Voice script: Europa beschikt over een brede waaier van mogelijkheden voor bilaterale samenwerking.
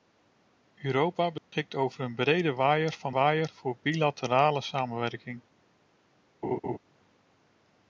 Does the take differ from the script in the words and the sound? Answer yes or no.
yes